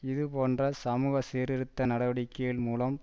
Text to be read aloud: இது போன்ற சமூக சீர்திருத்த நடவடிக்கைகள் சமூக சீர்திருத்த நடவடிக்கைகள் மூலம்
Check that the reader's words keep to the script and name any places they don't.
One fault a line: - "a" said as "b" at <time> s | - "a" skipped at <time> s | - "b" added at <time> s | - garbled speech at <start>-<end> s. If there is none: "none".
- "சமூக சீர்திருத்த நடவடிக்கைகள்" skipped at 2.6 s